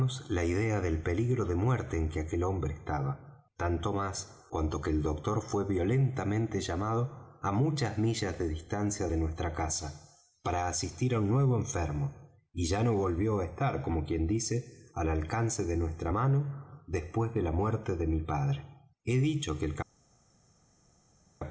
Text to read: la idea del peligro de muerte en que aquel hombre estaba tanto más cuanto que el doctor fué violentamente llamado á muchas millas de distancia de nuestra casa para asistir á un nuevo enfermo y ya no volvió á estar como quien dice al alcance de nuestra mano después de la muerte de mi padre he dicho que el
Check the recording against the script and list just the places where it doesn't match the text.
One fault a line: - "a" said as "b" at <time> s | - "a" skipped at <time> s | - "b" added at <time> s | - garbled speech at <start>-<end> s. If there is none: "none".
none